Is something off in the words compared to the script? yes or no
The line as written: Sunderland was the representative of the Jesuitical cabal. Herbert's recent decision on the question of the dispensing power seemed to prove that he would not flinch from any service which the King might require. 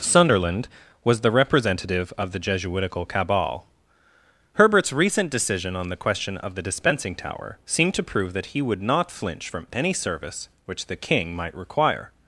yes